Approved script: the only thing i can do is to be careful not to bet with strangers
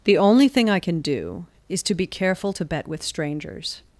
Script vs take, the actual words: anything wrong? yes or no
yes